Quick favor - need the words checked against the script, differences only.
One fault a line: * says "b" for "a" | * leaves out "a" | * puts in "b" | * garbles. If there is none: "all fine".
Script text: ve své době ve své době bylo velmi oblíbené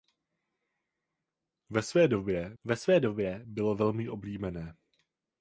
all fine